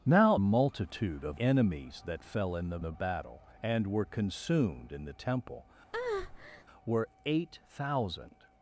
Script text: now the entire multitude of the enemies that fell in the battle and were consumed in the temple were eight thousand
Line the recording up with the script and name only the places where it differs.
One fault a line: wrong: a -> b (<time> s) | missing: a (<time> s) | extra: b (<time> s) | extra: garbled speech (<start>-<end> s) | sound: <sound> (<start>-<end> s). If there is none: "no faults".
missing: the entire (0.4 s)
missing: the (1.4 s)
extra: the (2.8 s)
sound: breath (5.9-6.6 s)